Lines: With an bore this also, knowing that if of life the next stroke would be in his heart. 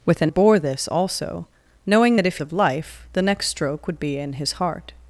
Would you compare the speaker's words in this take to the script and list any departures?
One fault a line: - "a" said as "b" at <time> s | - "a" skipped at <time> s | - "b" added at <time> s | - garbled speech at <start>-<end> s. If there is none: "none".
none